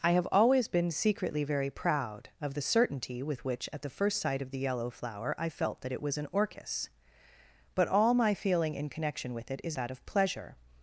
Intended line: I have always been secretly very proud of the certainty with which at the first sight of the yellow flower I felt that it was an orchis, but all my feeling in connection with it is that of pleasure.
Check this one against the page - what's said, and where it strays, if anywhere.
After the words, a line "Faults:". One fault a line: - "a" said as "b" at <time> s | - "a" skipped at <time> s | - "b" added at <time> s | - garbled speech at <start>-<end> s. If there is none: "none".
I have always been secretly very proud of the certainty with which at the first sight of the yellow flower I felt that it was an orchis, but all my feeling in connection with it is that of pleasure.
Faults:
none